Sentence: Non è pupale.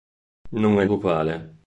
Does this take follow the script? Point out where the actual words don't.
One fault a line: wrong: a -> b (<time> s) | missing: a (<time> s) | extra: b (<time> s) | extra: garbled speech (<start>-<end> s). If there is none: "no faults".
no faults